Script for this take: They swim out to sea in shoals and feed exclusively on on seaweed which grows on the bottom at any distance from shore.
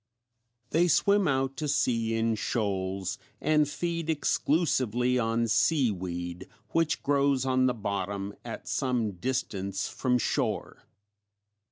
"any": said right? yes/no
no